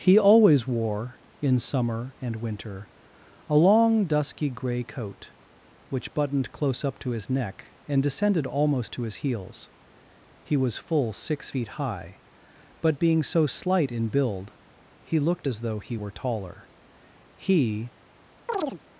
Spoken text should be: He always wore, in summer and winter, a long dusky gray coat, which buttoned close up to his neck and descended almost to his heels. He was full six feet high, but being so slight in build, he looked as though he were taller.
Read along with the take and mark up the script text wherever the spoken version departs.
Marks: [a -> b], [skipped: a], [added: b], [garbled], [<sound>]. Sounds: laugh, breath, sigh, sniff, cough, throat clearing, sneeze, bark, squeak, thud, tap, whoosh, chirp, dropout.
He always wore, in summer and winter, a long dusky gray coat, which buttoned close up to his neck and descended almost to his heels. He was full six feet high, but being so slight in build, he looked as though he were taller. [added: He] [chirp]